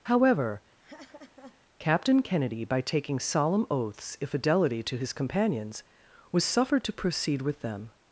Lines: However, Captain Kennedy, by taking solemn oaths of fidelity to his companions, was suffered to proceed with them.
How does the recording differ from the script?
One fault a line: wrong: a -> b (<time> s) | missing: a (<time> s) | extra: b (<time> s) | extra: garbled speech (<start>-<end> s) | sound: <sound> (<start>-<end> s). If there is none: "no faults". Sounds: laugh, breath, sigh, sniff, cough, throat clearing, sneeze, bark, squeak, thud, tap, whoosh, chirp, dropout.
sound: laugh (0.8-1.6 s)
wrong: of -> if (4.2 s)